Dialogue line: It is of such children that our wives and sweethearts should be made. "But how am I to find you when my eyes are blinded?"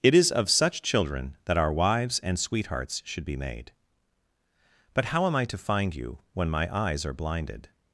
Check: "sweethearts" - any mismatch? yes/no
no